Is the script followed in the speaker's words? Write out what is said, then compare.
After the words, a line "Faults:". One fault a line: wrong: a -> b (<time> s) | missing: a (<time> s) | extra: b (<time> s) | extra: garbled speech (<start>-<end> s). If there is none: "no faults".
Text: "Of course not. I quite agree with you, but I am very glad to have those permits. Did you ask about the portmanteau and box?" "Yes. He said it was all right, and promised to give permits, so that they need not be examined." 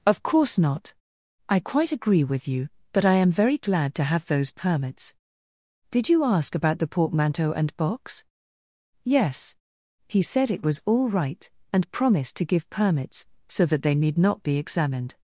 "Of course not. I quite agree with you, but I am very glad to have those permits. Did you ask about the portmanteau and box?" "Yes. He said it was all right, and promised to give permits, so that they need not be examined."
Faults:
no faults